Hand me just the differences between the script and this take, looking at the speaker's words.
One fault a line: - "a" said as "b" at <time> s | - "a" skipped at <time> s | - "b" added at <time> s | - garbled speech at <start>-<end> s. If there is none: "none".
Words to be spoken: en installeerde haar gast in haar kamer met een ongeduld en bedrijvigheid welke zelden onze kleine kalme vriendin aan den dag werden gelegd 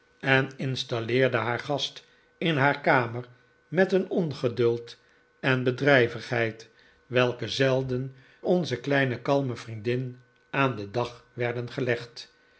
none